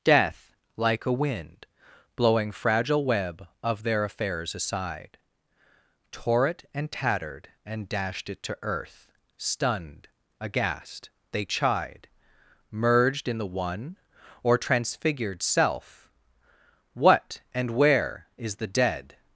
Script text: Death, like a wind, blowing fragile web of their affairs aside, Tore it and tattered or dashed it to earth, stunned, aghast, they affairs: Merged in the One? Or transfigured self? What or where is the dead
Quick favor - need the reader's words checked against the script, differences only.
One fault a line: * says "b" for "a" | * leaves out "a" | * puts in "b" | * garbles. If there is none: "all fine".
* says "and" for "or"
* says "chide" for "affairs"
* says "and" for "or"